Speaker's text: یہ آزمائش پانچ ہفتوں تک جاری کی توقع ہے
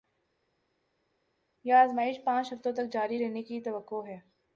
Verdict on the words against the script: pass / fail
fail